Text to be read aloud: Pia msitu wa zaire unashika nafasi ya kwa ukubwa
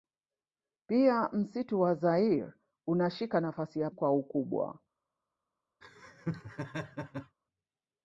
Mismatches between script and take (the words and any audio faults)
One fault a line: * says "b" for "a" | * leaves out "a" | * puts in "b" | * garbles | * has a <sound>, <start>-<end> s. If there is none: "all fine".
* has a laugh, 5.8-7.4 s